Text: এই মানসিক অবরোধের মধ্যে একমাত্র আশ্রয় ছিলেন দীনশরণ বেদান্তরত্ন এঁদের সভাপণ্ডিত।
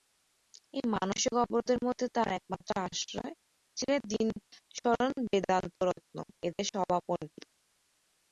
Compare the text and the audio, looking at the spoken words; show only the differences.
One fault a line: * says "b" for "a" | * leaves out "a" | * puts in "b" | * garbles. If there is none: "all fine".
* puts in "তাঁর"